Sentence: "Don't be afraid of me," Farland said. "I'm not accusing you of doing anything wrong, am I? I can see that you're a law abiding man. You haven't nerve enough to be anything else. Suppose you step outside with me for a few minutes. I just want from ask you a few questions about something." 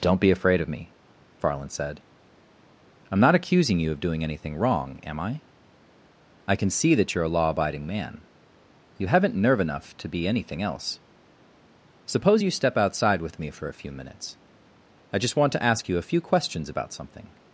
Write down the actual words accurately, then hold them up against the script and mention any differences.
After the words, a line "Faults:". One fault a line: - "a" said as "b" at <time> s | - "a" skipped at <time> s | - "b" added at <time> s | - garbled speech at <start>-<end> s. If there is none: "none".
"Don't be afraid of me," Farland said. "I'm not accusing you of doing anything wrong, am I? I can see that you're a law abiding man. You haven't nerve enough to be anything else. Suppose you step outside with me for a few minutes. I just want to ask you a few questions about something."
Faults:
- "from" said as "to" at 15.5 s